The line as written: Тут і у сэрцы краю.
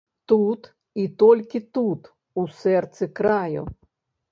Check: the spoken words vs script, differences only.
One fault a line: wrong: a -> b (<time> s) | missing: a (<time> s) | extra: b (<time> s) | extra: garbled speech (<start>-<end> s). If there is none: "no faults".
extra: толькі тут (1.2 s)